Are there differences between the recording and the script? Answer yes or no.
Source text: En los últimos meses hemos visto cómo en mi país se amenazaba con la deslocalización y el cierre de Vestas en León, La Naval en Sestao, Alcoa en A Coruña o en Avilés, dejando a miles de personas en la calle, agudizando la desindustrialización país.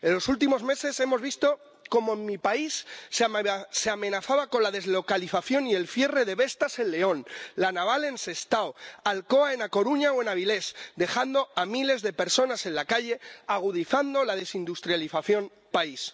no